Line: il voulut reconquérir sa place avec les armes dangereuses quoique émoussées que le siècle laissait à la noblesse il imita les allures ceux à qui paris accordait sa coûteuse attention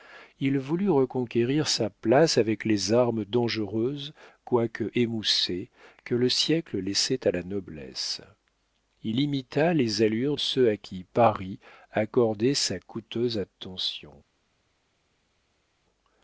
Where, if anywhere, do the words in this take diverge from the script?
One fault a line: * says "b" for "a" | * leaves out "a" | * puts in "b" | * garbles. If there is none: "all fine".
all fine